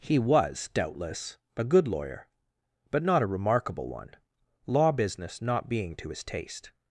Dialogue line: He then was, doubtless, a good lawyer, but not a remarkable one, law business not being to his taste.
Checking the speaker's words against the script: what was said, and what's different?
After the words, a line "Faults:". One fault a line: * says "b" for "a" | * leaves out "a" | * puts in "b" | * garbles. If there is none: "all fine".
He was, doubtless, a good lawyer, but not a remarkable one, law business not being to his taste.
Faults:
* leaves out "then"